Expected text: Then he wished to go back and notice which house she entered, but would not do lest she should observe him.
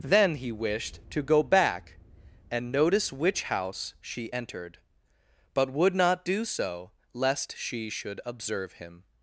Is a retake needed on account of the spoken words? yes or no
yes